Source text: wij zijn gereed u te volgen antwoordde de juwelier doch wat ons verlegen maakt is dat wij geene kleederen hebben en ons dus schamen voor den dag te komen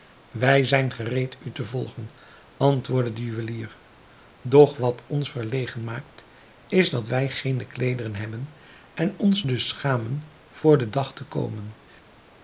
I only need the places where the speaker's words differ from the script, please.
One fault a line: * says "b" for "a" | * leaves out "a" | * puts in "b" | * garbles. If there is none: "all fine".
all fine